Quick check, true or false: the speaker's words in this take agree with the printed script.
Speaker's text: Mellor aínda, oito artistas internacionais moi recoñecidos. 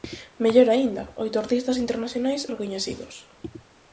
false